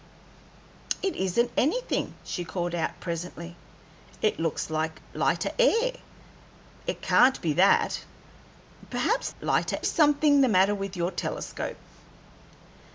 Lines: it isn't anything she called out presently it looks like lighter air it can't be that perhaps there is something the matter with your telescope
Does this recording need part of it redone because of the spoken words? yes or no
yes